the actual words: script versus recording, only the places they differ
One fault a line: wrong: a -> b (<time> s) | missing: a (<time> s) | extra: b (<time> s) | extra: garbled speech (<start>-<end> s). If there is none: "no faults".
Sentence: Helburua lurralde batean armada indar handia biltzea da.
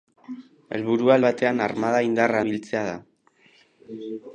missing: lurralde (1.2 s)
missing: handia (2.4 s)